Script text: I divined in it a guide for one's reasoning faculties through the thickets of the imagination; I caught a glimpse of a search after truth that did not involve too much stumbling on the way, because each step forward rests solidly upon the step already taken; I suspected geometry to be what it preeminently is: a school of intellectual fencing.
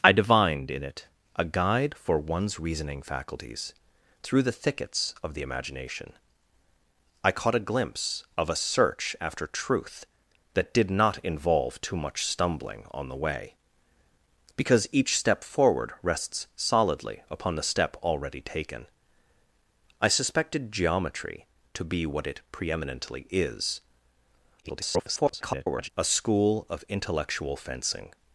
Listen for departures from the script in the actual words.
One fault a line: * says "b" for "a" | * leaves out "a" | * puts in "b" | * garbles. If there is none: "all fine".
* garbles